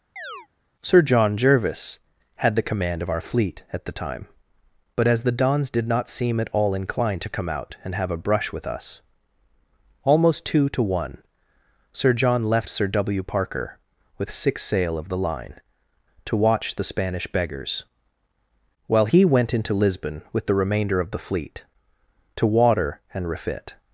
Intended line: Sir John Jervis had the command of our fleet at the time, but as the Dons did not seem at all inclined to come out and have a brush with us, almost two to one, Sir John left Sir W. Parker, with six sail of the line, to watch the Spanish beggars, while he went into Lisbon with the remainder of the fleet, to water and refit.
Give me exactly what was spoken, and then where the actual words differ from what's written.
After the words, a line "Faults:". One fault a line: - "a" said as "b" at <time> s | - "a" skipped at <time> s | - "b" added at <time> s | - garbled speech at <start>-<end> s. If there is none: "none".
Sir John Jervis had the command of our fleet at the time, but as the Dons did not seem at all inclined to come out and have a brush with us, almost two to one, Sir John left Sir W. Parker, with six sail of the line, to watch the Spanish beggars, while he went into Lisbon with the remainder of the fleet, to water and refit.
Faults:
none